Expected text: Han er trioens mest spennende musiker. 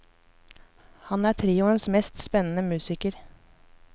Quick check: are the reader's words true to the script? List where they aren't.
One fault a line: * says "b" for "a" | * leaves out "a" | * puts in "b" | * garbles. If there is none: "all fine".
all fine